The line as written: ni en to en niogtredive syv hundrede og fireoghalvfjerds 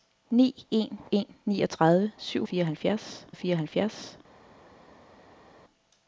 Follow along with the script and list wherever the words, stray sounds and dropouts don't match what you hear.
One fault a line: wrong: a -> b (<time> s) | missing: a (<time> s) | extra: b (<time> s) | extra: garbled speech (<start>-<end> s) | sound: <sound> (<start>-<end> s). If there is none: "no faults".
missing: to (1.0 s)
wrong: hundrede -> fireoghalvfjerds (2.4 s)